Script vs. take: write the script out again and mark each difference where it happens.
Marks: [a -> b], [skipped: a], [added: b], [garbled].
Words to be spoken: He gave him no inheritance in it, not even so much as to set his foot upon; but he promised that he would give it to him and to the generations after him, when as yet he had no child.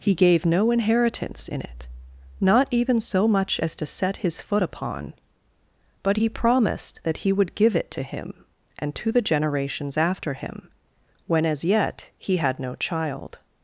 He gave [skipped: him] no inheritance in it, not even so much as to set his foot upon; but he promised that he would give it to him and to the generations after him, when as yet he had no child.